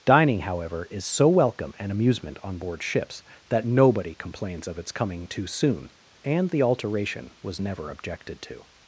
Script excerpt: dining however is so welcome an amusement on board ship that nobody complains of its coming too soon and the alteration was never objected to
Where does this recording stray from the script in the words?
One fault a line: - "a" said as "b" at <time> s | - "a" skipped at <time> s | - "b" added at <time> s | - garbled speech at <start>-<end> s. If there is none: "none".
- "ship" said as "ships" at 2.8 s